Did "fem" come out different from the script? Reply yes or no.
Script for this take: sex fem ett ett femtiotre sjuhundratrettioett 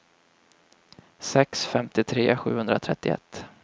yes